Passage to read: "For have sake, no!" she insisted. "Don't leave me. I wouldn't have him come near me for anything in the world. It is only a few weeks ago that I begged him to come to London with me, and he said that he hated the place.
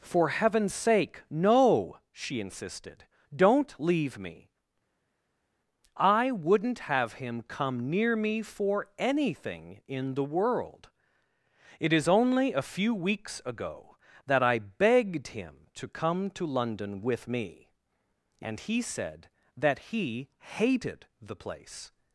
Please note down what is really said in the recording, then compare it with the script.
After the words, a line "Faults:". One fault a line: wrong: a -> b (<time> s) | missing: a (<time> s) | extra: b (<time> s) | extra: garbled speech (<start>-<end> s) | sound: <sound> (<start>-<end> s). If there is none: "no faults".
"For heaven's sake, no!" she insisted. "Don't leave me. I wouldn't have him come near me for anything in the world. It is only a few weeks ago that I begged him to come to London with me, and he said that he hated the place.
Faults:
wrong: have -> heaven's (0.3 s)